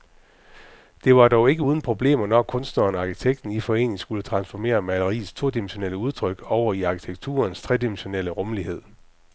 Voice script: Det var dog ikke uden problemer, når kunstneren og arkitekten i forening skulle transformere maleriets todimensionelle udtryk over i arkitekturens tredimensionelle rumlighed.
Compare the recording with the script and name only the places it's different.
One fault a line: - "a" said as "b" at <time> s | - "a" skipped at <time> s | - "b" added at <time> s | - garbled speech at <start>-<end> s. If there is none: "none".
none